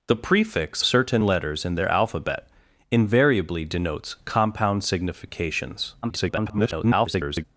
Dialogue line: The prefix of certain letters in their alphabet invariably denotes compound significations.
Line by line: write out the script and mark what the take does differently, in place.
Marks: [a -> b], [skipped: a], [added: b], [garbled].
The prefix [skipped: of] certain letters in their alphabet invariably denotes compound significations. [garbled]